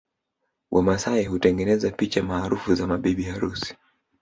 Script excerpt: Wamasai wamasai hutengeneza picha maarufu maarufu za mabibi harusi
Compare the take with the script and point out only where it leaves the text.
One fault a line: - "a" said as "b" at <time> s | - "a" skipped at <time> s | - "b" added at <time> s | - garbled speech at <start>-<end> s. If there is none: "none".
- "wamasai" skipped at 1.2 s
- "maarufu" skipped at 2.7 s